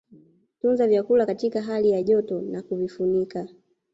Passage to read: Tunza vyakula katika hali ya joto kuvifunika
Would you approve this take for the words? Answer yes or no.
no